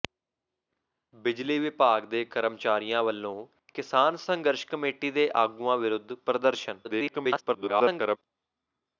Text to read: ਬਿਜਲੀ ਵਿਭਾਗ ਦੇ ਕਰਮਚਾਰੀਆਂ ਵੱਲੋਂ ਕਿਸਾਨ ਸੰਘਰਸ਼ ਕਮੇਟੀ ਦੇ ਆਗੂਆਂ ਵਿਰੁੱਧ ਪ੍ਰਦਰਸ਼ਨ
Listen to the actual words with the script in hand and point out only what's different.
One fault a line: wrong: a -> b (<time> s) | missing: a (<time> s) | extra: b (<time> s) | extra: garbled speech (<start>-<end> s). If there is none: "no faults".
extra: garbled speech (6.8-8.2 s)